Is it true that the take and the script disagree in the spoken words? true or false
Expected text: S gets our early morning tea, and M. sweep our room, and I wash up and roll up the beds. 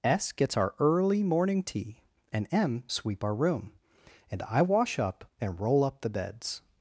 false